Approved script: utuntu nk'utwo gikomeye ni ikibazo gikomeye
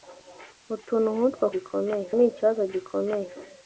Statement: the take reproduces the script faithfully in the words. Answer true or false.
true